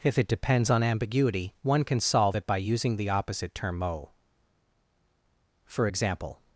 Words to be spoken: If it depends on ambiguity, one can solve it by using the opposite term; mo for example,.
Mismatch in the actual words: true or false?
false